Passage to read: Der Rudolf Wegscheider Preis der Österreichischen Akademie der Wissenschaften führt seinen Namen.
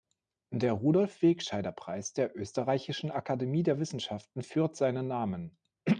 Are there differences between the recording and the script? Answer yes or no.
no